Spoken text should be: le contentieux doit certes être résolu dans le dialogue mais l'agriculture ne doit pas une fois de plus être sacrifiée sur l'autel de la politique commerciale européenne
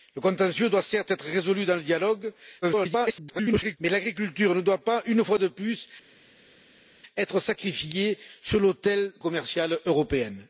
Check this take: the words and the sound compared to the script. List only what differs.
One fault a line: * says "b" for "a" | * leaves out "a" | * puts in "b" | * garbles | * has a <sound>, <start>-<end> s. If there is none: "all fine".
* garbles
* leaves out "de la politique"